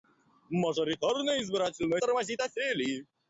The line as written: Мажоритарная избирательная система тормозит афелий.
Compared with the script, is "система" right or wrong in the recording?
wrong